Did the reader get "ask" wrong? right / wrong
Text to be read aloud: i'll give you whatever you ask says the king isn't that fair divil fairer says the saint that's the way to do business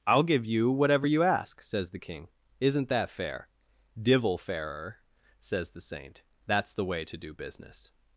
right